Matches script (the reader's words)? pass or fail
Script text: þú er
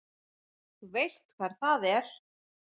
fail